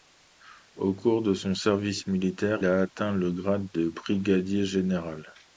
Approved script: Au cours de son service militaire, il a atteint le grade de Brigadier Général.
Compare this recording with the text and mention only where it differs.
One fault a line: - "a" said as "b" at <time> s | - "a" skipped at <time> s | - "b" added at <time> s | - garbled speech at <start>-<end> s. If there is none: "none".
- "il" skipped at 2.6 s